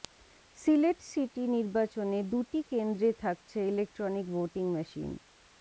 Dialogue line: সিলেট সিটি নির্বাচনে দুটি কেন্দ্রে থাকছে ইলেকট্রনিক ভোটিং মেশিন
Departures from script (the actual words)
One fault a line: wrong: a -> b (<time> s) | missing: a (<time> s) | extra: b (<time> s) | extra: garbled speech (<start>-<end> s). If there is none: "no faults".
no faults